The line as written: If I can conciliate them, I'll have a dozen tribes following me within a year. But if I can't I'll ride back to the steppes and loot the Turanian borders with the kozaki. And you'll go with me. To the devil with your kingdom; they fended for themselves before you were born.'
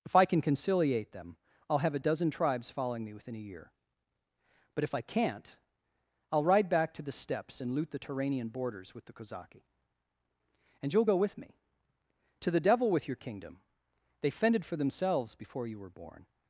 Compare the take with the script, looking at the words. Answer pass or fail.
pass